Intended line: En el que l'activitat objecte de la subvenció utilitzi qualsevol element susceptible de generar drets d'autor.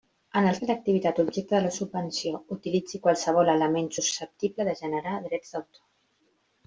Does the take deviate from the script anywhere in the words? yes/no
no